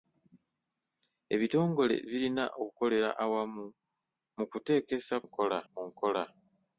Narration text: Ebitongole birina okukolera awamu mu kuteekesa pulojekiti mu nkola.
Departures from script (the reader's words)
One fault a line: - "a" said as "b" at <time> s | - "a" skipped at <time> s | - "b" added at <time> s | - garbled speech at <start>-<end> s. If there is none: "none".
- "pulojekiti" said as "nkola" at 5.2 s